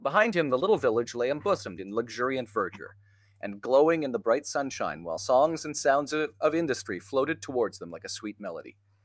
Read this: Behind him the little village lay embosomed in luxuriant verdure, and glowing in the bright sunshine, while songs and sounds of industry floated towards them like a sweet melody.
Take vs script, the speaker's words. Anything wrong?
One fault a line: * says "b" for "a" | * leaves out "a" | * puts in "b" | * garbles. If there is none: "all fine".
* puts in "of"